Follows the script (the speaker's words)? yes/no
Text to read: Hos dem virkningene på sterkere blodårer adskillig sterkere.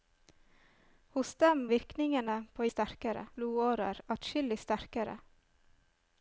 yes